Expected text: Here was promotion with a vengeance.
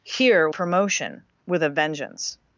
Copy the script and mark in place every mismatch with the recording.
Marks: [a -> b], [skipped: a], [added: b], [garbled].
Here [skipped: was] promotion with a vengeance.